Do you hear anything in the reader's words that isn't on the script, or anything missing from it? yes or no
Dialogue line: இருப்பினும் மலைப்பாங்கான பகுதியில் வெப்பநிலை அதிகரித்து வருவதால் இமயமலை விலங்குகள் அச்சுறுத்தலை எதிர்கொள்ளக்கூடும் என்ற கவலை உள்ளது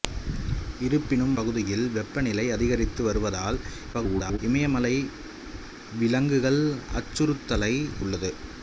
yes